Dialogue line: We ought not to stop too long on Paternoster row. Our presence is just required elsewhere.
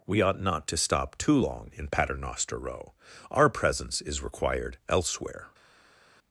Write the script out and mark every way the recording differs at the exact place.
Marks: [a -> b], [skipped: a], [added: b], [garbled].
We ought not to stop too long [on -> in] Paternoster row. Our presence is [skipped: just] required elsewhere.